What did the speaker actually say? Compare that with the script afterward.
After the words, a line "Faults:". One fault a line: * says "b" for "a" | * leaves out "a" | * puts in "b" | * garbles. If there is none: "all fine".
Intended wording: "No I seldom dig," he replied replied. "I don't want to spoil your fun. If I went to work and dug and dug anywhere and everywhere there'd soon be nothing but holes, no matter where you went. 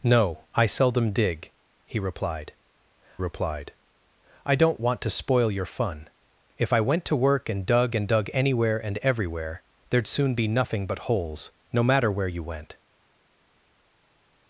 "No I seldom dig," he replied replied. "I don't want to spoil your fun. If I went to work and dug and dug anywhere and everywhere there'd soon be nothing but holes, no matter where you went.
Faults:
all fine